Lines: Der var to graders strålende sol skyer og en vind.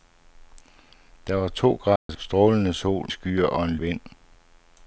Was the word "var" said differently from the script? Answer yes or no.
no